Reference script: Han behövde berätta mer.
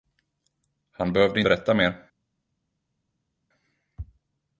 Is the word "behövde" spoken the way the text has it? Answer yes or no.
yes